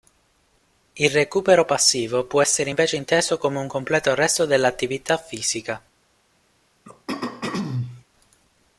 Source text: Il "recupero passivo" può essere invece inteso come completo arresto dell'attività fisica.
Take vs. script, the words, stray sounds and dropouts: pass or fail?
fail